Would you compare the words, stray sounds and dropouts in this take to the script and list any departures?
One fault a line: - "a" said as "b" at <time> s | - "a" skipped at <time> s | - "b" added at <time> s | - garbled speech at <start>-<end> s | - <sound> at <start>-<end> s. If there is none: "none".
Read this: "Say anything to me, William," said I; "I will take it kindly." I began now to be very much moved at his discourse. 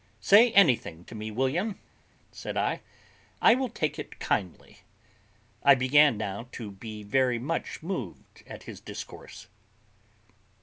none